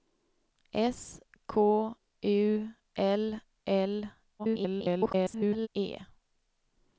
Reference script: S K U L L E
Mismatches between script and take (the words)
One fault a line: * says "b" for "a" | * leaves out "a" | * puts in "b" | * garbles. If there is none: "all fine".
* garbles